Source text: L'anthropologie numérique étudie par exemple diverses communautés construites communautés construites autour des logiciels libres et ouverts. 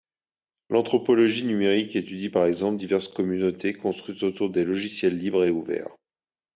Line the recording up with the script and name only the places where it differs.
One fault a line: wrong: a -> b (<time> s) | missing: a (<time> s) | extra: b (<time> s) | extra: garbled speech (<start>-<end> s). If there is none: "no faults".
missing: communautés construites (4.2 s)